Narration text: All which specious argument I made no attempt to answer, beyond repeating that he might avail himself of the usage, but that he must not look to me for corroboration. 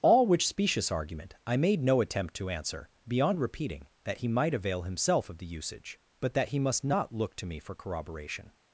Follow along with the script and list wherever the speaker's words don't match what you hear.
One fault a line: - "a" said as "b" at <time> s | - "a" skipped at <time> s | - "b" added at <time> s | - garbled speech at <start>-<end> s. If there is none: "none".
none